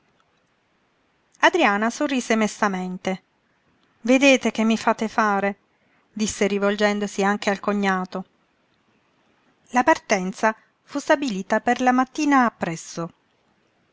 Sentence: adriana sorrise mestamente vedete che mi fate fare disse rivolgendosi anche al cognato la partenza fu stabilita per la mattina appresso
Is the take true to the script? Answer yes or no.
yes